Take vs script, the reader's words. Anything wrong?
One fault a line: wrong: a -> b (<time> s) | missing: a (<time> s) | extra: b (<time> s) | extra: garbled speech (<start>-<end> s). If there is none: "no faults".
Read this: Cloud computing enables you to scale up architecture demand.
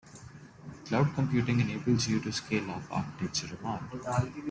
no faults